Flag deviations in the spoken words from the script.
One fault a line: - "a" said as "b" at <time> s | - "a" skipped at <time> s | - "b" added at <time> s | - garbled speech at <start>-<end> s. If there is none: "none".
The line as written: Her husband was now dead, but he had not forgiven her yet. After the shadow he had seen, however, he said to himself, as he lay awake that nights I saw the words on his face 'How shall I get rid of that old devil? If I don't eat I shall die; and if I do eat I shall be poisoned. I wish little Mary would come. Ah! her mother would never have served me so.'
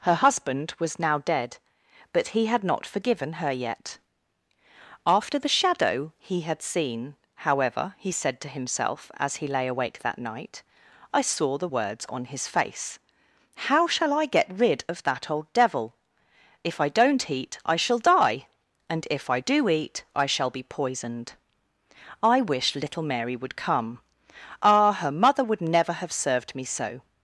- "nights" said as "night" at 10.2 s